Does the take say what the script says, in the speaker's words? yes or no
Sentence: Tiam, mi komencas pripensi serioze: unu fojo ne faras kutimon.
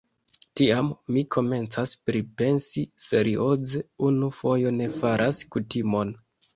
yes